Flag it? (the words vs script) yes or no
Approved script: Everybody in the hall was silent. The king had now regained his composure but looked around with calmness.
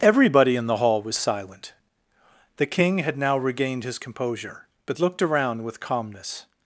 no